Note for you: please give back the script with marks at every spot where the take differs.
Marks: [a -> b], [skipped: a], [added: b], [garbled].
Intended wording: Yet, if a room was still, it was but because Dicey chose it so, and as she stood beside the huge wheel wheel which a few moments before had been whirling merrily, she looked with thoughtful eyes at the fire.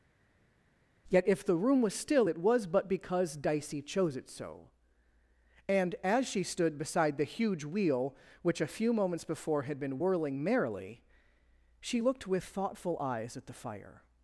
Yet, if [a -> the] room was still, it was but because Dicey chose it so, and as she stood beside the huge wheel [skipped: wheel] which a few moments before had been whirling merrily, she looked with thoughtful eyes at the fire.